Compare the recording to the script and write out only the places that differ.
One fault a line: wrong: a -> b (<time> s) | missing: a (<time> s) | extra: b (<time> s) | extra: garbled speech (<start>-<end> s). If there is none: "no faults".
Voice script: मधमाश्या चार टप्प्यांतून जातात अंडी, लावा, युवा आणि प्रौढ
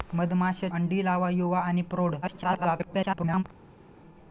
missing: चार टप्प्यांतून जातात (0.7 s)
extra: garbled speech (2.2-3.4 s)